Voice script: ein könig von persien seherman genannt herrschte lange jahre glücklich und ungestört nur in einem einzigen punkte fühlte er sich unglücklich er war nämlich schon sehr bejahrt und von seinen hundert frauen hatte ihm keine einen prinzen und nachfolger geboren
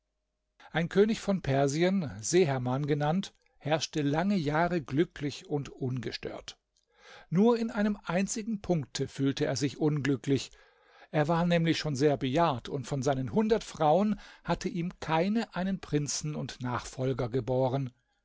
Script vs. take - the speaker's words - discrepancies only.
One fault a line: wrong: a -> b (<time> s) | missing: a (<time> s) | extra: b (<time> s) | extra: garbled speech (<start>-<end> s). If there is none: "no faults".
no faults